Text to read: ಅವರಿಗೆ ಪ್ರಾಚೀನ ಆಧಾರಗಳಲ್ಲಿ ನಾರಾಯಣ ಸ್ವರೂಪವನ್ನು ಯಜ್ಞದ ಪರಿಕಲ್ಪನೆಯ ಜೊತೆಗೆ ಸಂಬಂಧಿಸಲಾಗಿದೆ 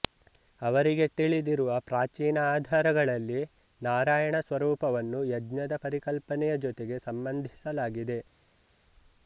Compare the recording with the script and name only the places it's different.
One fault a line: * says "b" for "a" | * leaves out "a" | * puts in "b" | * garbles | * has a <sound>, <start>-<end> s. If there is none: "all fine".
* puts in "ತಿಳಿದಿರುವ"